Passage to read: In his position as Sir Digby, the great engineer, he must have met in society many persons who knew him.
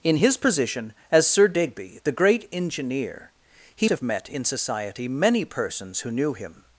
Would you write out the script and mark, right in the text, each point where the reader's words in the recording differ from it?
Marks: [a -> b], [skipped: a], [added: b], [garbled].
In his position as Sir Digby, the great engineer, he [skipped: must] have met in society many persons who knew him.